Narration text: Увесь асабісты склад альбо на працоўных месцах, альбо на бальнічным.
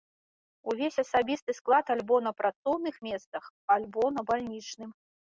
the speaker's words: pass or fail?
pass